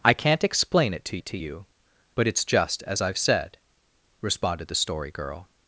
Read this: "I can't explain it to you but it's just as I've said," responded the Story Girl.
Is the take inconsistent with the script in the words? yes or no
yes